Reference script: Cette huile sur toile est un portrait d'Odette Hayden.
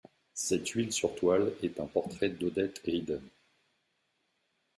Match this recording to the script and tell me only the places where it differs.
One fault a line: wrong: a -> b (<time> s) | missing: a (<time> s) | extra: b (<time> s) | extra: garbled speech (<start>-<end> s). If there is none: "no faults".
no faults